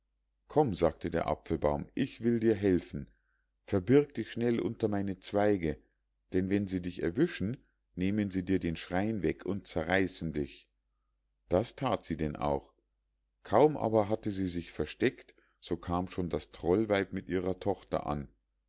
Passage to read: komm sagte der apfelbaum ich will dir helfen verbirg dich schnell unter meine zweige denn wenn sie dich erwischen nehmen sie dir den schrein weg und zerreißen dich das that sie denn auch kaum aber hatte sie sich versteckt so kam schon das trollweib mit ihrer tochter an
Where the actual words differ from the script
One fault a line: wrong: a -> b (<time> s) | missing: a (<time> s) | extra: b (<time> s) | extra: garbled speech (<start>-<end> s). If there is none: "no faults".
no faults